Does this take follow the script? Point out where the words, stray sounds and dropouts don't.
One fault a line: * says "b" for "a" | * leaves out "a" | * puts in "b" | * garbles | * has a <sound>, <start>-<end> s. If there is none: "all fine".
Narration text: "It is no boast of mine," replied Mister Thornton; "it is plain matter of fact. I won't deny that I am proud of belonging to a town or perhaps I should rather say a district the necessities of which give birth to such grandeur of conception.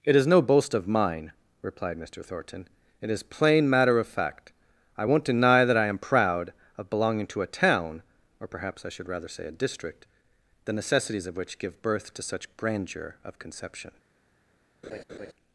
* has a laugh, 14.8-15.3 s